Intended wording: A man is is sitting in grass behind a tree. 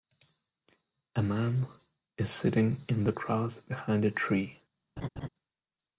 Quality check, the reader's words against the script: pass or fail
fail